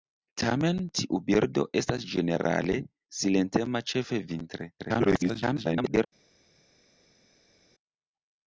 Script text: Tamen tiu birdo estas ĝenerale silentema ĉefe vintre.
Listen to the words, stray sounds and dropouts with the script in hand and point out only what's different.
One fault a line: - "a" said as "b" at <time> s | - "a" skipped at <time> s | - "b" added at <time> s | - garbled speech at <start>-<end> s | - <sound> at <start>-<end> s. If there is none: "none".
- garbled speech at 4.8-6.1 s